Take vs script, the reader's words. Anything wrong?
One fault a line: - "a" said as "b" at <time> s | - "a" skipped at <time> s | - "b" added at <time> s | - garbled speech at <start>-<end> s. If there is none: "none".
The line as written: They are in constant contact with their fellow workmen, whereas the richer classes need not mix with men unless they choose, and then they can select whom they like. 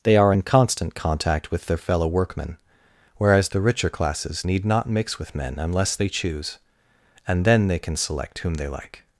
none